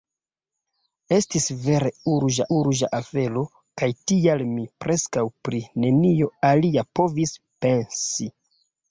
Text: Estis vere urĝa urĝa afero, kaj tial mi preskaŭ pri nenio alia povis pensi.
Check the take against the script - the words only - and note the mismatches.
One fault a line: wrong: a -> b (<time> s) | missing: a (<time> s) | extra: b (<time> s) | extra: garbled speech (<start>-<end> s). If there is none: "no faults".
no faults